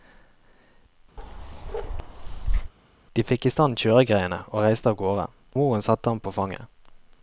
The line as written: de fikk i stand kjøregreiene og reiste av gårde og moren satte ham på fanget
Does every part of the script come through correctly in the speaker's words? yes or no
no